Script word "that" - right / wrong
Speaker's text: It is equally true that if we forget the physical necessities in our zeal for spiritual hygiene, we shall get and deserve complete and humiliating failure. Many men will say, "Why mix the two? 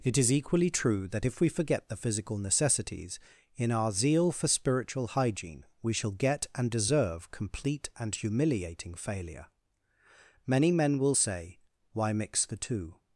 right